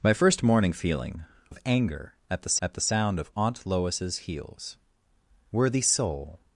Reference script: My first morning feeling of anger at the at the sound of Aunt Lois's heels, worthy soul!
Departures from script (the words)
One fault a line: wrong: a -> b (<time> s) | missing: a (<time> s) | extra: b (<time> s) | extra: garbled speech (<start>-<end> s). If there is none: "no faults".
no faults